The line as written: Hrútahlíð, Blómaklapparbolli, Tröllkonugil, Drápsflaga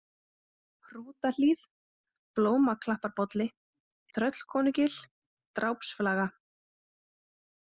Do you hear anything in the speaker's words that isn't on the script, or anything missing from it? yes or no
no